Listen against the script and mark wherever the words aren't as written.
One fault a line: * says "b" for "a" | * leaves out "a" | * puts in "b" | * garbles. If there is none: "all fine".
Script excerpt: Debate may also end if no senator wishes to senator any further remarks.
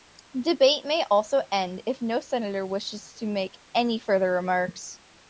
* says "make" for "senator"